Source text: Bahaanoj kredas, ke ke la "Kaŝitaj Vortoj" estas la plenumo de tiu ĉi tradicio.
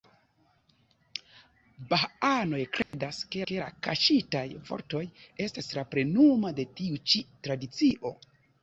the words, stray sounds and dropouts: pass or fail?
fail